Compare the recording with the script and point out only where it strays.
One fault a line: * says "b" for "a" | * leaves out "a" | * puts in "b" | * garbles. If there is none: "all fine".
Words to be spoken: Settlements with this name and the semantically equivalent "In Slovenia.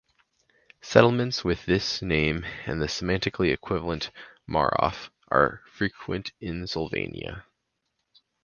* puts in "Marof are frequent"